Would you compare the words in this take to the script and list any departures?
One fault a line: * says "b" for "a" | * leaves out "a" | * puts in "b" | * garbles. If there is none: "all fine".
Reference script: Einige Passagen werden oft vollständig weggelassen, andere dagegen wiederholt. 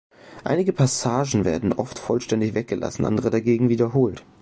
all fine